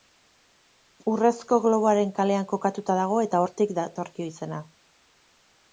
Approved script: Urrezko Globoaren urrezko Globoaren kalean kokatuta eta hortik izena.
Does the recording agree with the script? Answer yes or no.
no